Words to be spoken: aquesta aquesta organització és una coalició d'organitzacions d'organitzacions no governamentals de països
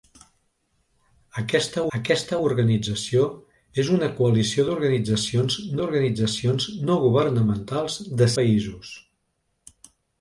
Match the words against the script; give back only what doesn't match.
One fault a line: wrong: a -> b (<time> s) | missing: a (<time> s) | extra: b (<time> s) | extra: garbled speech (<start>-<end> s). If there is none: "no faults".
no faults